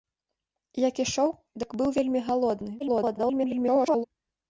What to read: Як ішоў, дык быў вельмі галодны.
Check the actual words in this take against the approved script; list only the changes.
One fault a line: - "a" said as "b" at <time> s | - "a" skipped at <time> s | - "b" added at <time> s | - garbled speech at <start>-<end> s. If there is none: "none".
- garbled speech at 2.8-4.0 s